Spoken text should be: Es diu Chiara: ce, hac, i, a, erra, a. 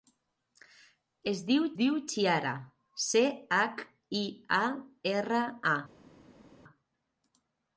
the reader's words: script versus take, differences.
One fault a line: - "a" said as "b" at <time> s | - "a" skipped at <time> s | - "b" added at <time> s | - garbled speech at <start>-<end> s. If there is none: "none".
- "diu" added at 1.8 s